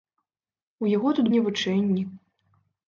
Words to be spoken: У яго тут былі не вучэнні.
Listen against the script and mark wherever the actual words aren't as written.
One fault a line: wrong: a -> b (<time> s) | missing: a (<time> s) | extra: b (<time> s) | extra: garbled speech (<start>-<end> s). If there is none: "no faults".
missing: былі (1.3 s)